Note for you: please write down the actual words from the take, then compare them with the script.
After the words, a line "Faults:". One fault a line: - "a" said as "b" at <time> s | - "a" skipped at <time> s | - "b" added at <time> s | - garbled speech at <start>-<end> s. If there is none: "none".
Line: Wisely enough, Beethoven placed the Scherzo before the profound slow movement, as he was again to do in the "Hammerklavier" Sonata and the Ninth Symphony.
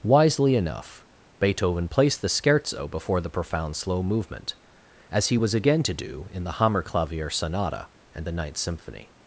Wisely enough, Beethoven placed the Scherzo before the profound slow movement, as he was again to do in the "Hammerklavier" Sonata and the Ninth Symphony.
Faults:
none